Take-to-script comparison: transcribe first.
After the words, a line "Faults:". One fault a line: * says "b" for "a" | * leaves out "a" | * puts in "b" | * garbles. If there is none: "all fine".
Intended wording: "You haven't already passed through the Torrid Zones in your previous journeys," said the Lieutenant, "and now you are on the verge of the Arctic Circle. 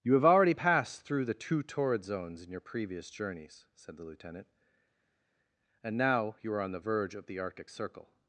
"You have already passed through the two Torrid Zones in your previous journeys," said the Lieutenant, "and now you are on the verge of the Arctic Circle.
Faults:
* says "have" for "haven't"
* puts in "two"